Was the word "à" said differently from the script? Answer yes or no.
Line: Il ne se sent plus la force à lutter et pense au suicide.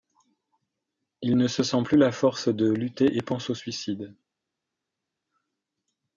yes